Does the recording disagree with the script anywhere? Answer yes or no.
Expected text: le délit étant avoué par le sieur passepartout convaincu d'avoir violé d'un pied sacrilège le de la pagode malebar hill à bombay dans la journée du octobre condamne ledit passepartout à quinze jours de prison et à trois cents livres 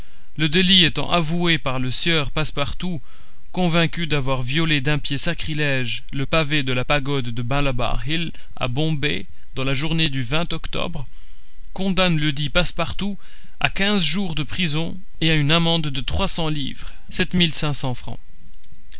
yes